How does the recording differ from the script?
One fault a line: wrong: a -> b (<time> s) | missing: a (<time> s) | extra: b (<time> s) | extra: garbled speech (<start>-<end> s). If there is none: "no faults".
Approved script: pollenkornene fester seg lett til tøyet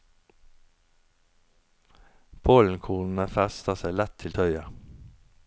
no faults